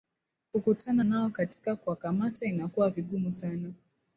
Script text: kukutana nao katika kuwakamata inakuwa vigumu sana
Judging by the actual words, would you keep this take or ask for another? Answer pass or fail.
pass